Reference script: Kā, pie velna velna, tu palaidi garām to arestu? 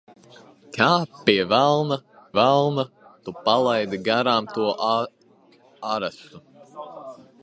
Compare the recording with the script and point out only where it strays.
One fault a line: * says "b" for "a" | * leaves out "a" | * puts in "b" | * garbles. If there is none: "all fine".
all fine